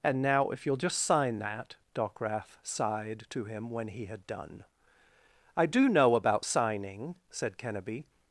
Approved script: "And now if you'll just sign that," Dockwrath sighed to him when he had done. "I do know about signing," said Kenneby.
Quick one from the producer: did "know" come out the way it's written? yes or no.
yes